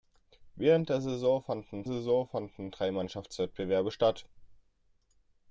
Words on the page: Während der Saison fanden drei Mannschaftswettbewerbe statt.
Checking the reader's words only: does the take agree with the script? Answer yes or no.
no